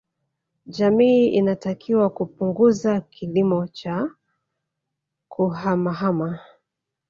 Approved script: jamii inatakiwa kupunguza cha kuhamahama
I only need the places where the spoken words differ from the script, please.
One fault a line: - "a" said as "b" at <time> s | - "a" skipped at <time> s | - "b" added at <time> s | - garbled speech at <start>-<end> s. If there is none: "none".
- "kilimo" added at 3.0 s